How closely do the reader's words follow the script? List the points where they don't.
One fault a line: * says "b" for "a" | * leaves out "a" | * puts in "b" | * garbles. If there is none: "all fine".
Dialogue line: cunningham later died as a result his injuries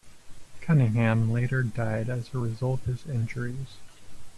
all fine